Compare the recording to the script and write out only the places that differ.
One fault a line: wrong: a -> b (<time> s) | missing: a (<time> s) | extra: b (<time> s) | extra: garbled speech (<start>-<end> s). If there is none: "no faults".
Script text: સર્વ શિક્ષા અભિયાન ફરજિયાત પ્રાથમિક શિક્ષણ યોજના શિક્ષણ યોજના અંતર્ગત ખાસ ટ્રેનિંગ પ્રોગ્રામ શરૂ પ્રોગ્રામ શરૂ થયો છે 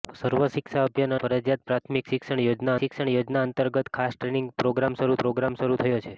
no faults